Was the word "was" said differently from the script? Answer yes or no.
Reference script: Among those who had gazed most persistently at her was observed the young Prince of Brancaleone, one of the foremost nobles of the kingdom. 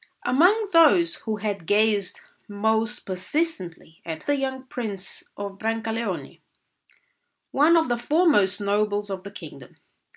yes